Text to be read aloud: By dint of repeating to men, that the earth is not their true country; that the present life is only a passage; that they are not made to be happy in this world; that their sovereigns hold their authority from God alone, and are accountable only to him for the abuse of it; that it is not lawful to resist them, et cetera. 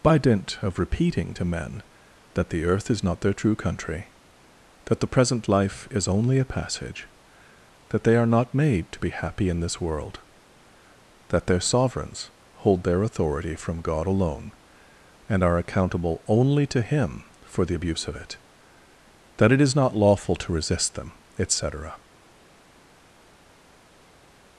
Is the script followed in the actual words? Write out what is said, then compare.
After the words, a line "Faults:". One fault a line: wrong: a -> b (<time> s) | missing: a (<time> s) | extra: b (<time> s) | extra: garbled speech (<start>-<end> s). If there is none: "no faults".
By dint of repeating to men, that the earth is not their true country; that the present life is only a passage; that they are not made to be happy in this world; that their sovereigns hold their authority from God alone, and are accountable only to him for the abuse of it; that it is not lawful to resist them, et cetera.
Faults:
no faults